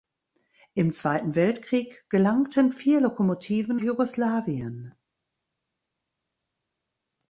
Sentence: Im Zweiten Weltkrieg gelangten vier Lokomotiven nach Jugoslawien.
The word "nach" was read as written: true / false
false